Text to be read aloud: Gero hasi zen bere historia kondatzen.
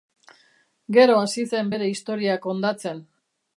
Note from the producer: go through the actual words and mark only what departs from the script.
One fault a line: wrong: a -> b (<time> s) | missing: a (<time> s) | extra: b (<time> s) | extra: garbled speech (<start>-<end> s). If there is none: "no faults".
no faults